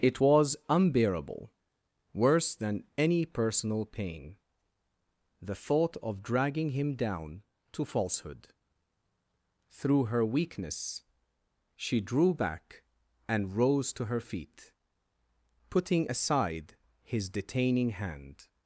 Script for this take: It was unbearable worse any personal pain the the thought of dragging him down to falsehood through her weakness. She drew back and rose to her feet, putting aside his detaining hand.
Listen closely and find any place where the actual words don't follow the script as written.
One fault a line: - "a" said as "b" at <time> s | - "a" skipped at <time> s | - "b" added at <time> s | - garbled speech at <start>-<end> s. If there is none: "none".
- "than" added at 2.6 s
- "the" skipped at 5.5 s